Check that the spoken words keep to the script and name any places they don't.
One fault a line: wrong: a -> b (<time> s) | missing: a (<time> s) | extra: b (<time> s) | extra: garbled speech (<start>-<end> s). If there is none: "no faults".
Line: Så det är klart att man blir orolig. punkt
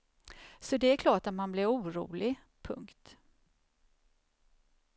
no faults